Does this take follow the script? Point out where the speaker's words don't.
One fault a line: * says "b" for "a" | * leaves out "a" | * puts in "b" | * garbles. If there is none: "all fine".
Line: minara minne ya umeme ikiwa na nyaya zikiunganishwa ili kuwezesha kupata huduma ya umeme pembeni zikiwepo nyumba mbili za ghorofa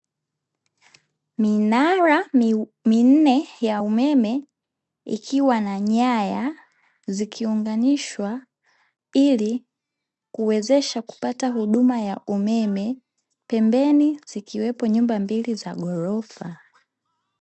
all fine